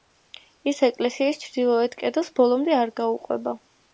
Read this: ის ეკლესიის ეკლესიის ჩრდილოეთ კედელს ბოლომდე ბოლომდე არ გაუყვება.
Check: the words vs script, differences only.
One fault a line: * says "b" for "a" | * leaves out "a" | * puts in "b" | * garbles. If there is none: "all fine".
* leaves out "ეკლესიის"
* leaves out "ბოლომდე"